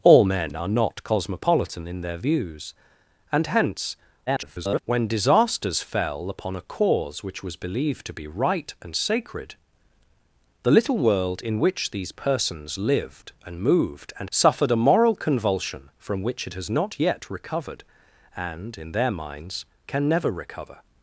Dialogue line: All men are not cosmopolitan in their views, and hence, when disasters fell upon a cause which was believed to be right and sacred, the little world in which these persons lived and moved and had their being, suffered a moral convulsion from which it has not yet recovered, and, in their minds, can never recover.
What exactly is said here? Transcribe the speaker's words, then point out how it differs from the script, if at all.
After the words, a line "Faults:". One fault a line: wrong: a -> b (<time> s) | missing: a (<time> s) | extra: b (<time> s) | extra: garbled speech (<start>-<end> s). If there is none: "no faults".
All men are not cosmopolitan in their views, and hence, [garbled] when disasters fell upon a cause which was believed to be right and sacred, the little world in which these persons lived and moved and suffered a moral convulsion from which it has not yet recovered, and, in their minds, can never recover.
Faults:
extra: garbled speech (4.3-4.8 s)
missing: had their being (14.3 s)